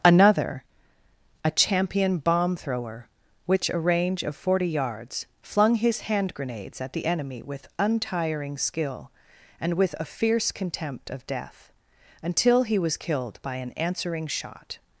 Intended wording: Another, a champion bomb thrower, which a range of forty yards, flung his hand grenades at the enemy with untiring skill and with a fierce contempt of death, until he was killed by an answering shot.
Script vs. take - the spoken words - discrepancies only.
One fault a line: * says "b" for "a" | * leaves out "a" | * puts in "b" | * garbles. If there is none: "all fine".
all fine